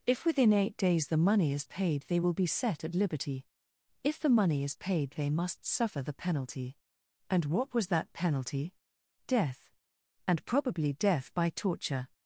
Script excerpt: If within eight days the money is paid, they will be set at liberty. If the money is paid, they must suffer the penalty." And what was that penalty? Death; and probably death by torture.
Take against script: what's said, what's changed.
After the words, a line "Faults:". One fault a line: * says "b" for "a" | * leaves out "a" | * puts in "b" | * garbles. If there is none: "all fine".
If within eight days the money is paid, they will be set at liberty. If the money is paid, they must suffer the penalty." And what was that penalty? Death; and probably death by torture.
Faults:
all fine